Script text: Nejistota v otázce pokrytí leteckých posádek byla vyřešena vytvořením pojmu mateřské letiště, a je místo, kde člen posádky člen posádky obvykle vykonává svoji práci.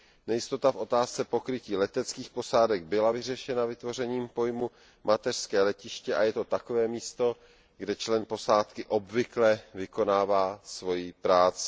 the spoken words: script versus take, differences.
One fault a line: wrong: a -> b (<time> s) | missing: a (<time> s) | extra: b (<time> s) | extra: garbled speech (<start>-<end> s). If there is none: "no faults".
extra: to takové (6.3 s)
missing: člen posádky (8.8 s)